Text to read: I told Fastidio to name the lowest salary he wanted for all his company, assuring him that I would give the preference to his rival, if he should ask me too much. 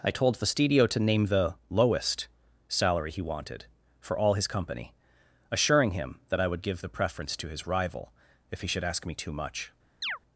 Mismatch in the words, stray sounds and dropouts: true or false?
true